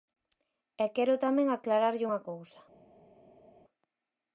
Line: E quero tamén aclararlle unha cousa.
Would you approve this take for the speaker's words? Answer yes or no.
yes